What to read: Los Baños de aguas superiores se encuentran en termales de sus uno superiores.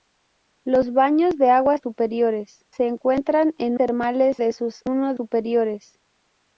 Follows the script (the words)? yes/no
yes